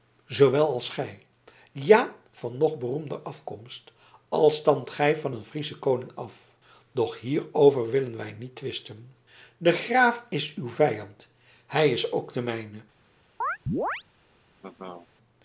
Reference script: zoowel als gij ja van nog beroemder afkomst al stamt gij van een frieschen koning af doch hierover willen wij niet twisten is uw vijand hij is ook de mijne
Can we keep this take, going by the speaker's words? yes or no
no